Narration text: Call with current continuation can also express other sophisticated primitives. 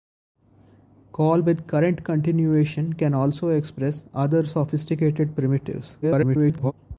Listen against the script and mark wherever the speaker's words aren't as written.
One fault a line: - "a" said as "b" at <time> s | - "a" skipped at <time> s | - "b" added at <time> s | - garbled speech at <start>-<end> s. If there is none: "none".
- garbled speech at 6.0-6.7 s